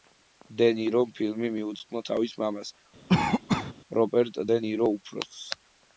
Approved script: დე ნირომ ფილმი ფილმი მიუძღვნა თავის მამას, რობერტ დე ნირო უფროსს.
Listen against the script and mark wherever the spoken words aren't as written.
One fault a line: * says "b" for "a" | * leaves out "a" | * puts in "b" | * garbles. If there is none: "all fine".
* leaves out "ფილმი"